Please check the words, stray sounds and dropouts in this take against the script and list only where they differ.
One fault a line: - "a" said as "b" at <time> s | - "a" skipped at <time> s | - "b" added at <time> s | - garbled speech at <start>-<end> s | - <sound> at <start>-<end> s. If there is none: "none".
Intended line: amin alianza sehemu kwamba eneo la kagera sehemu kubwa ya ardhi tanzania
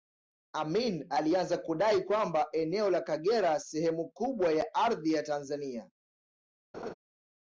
- "sehemu" said as "kudai" at 1.6 s
- "ya" added at 5.1 s
- laugh at 6.7-6.9 s